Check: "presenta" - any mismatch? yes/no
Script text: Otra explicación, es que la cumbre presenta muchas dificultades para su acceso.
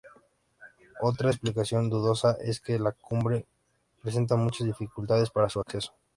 no